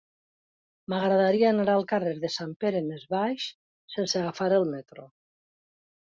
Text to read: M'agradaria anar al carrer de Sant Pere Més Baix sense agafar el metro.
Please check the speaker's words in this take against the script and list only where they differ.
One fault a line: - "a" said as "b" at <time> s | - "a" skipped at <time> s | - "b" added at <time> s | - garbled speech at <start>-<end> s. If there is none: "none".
none